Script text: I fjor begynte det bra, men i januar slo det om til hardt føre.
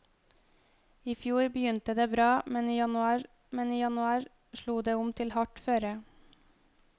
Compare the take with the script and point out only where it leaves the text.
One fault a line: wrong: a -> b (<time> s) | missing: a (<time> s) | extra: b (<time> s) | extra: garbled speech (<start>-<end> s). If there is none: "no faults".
extra: men i januar (3.6 s)